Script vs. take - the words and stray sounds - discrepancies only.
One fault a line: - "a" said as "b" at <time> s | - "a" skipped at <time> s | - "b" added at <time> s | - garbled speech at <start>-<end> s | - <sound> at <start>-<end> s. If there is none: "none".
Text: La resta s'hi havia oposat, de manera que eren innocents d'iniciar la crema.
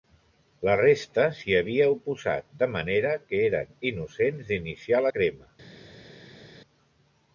none